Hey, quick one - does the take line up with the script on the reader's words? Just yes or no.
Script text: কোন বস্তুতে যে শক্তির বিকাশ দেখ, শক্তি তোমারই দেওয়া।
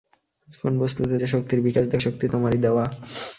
yes